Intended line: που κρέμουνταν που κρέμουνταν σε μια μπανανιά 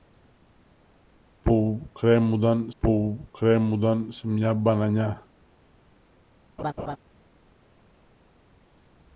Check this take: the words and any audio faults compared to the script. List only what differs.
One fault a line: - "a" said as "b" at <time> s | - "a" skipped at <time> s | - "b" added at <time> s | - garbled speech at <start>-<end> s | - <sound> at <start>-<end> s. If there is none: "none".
- laugh at 6.6-7.0 s